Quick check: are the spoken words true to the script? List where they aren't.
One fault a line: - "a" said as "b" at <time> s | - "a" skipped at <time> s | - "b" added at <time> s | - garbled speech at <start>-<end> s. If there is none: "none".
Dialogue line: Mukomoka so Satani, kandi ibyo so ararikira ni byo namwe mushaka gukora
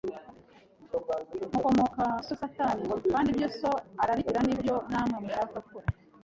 none